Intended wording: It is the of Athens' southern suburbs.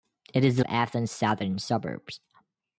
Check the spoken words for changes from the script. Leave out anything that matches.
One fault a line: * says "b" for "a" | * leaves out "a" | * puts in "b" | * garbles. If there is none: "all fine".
all fine